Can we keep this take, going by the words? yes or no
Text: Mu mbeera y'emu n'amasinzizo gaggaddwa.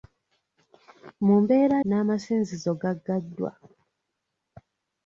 no